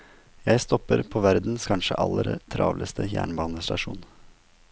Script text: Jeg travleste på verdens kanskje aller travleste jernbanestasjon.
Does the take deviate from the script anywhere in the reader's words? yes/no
yes